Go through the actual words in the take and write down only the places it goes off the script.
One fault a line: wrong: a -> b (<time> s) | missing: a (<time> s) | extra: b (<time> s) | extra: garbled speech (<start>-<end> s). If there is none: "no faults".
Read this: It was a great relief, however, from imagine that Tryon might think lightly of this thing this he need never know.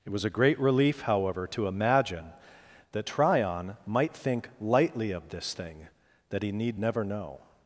wrong: from -> to (1.5 s)
wrong: this -> that (6.3 s)